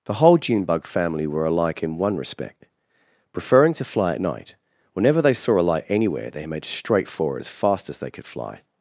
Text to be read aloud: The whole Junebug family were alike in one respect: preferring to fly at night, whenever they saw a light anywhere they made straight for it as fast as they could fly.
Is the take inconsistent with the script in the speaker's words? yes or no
no